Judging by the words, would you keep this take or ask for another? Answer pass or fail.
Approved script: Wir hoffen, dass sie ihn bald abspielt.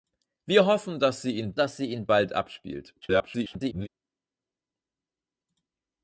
fail